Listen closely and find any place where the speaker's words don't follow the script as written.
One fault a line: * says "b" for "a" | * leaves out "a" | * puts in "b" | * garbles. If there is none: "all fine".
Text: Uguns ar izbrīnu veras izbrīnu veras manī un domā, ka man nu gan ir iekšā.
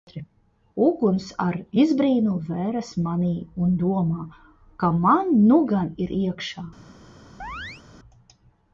* leaves out "izbrīnu veras"